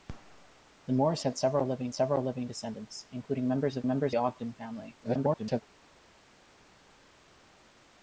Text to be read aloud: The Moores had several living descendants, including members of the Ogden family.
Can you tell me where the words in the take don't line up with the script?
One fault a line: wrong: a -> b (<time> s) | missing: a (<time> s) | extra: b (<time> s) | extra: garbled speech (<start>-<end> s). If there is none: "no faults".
extra: several living (1.9 s)
wrong: the -> members (3.9 s)
extra: garbled speech (5.0-5.6 s)